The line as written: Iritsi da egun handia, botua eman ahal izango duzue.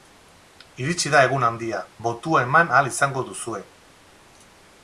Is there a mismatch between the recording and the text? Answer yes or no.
no